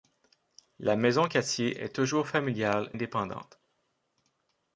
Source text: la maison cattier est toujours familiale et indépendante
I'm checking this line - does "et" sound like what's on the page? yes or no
no